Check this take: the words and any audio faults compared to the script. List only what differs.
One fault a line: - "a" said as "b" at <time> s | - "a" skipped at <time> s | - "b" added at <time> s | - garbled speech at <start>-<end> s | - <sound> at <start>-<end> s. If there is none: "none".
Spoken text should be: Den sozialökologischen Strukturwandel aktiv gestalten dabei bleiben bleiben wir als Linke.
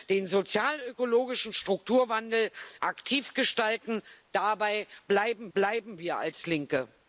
none